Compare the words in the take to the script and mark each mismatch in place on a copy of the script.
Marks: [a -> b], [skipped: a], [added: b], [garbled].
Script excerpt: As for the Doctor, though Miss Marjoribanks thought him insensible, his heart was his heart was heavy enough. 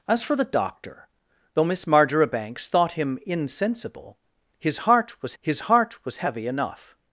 As for the Doctor, though Miss Marjoribanks thought him insensible, his heart was his heart was heavy enough.